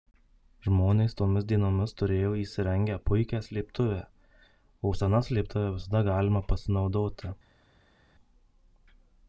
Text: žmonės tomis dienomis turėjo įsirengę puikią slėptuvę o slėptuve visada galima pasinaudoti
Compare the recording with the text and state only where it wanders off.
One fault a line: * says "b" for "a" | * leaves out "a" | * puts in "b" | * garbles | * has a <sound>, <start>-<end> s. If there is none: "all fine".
* puts in "sena"